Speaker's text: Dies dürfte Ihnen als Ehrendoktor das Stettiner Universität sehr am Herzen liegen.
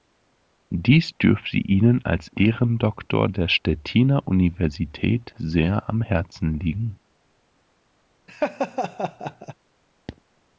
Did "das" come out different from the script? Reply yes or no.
yes